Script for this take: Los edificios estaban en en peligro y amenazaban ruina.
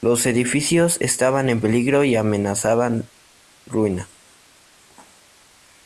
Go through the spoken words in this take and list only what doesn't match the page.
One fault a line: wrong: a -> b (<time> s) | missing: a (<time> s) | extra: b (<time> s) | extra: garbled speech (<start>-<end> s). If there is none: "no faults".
missing: en (1.6 s)